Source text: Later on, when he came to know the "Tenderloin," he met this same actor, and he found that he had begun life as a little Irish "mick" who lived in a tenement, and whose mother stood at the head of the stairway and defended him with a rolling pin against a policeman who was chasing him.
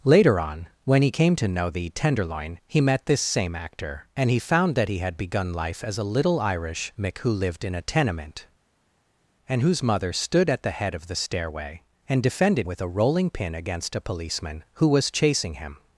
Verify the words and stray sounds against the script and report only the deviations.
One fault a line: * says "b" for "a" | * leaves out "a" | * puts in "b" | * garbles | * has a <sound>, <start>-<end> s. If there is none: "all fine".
* leaves out "him"